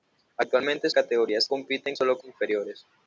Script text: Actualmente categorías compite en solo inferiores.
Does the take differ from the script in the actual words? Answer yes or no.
no